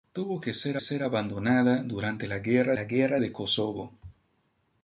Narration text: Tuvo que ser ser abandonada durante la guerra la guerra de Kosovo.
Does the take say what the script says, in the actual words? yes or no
yes